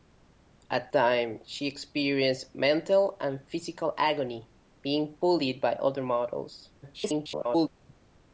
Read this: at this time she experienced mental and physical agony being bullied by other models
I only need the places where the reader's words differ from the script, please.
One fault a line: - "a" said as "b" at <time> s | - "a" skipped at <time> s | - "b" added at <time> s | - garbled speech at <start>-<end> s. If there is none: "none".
- "this" skipped at 0.9 s
- garbled speech at 6.8-7.7 s